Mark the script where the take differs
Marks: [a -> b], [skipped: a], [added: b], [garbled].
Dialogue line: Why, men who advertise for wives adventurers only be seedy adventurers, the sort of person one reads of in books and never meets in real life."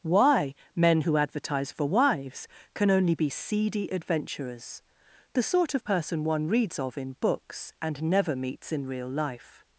Why, men who advertise for wives [adventurers -> can] only be seedy adventurers, the sort of person one reads of in books and never meets in real life."